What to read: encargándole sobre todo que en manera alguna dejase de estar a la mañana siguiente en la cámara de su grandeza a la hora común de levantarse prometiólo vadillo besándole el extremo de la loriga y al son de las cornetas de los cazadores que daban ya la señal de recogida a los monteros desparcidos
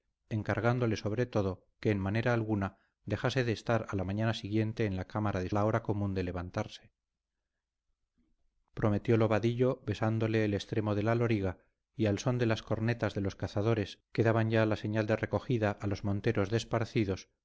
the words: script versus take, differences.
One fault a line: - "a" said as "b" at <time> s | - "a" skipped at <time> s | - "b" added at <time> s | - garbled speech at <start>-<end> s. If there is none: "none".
- "su grandeza a" skipped at 5.5 s